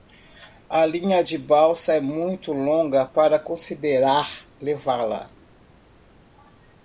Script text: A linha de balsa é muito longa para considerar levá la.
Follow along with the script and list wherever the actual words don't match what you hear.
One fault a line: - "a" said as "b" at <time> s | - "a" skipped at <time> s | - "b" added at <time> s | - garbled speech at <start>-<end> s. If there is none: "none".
none